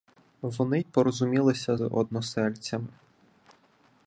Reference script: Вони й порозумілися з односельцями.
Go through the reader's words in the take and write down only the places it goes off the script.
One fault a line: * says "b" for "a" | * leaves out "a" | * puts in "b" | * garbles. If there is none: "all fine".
* leaves out "з"